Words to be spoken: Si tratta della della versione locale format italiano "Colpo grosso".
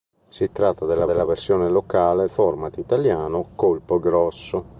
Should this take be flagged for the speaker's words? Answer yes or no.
no